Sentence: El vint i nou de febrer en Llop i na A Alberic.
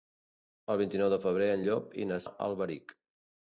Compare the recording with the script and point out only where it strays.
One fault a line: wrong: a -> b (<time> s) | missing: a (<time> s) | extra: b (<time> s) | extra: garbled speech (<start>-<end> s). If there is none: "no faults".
no faults